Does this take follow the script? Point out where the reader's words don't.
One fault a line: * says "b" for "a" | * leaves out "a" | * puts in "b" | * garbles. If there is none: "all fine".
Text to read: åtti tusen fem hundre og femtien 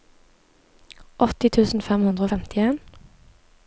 all fine